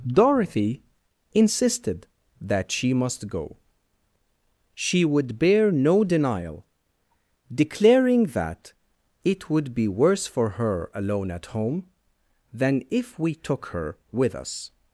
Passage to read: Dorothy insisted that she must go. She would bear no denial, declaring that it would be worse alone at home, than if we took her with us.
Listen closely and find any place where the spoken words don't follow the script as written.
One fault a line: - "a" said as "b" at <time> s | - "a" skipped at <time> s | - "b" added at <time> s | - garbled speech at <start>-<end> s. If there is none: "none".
- "for her" added at 10.2 s